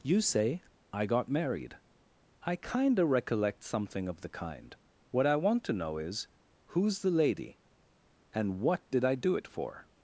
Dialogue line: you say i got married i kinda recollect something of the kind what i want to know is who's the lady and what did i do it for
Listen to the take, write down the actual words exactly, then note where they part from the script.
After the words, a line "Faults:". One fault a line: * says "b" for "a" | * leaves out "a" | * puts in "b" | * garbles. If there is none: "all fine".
you say i got married i kinda recollect something of the kind what i want to know is who's the lady and what did i do it for
Faults:
all fine